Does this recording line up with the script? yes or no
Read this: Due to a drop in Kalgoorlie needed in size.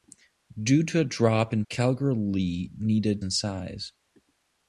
yes